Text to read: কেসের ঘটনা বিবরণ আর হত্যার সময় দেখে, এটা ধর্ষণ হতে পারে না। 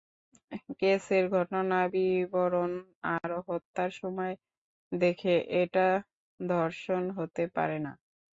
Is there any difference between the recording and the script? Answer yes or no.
no